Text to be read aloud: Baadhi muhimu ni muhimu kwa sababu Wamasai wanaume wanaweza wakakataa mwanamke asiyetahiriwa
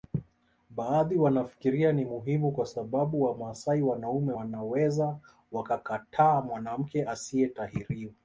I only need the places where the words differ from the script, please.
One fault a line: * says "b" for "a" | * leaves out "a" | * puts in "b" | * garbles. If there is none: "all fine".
* says "wanafikiria" for "muhimu"